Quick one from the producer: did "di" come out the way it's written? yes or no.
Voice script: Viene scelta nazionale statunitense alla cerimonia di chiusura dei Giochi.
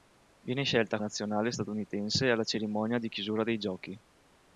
yes